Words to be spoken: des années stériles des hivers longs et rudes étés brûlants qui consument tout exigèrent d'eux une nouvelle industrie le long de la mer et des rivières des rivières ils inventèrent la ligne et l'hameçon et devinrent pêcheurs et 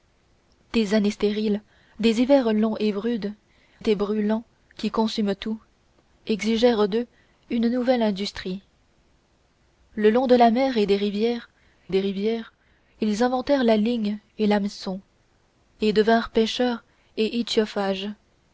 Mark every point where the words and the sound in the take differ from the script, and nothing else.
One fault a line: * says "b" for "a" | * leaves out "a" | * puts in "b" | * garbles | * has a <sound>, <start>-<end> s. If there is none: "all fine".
all fine